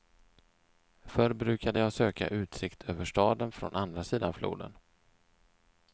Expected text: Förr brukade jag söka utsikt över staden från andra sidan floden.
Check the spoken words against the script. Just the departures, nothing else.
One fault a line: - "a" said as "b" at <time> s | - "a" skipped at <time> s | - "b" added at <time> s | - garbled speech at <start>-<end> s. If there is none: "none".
none